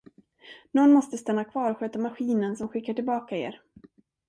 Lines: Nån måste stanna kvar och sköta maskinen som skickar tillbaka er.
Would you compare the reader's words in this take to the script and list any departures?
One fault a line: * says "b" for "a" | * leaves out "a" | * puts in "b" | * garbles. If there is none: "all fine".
all fine